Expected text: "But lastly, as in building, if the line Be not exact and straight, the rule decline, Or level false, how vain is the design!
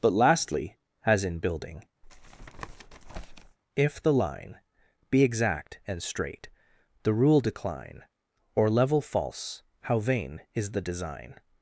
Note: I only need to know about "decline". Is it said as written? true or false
true